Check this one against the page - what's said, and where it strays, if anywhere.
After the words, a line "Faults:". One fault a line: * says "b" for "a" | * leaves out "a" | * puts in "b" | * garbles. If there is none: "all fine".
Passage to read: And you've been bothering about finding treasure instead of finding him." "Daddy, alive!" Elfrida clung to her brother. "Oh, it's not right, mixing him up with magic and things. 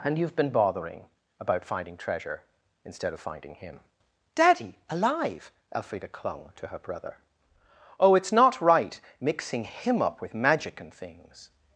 And you've been bothering about finding treasure instead of finding him." "Daddy, alive!" Elfrida clung to her brother. "Oh, it's not right, mixing him up with magic and things.
Faults:
all fine